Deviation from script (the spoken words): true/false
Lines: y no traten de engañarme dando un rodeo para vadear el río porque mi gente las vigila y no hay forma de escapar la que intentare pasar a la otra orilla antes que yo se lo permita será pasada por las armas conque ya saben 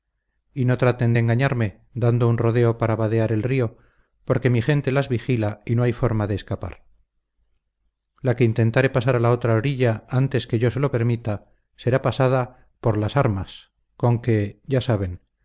false